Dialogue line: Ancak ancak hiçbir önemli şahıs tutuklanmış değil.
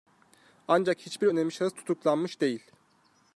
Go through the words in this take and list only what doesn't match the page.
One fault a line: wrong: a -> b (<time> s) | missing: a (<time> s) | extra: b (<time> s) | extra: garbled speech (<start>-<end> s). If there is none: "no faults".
missing: ancak (1.0 s)